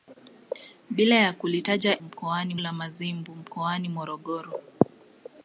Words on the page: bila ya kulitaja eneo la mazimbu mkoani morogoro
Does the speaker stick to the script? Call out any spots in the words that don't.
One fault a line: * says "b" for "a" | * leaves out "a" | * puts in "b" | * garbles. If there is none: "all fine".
* says "mkoani" for "eneo"